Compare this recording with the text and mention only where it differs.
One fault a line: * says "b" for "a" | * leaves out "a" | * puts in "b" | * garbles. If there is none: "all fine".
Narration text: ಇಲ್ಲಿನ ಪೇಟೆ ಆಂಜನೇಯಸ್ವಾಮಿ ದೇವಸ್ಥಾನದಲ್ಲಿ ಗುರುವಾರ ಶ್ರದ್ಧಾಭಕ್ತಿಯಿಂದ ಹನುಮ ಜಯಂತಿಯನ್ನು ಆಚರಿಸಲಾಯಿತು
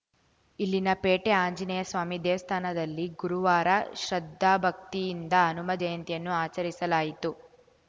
all fine